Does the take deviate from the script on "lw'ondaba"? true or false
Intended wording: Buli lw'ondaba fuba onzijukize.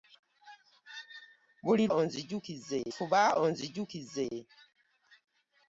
true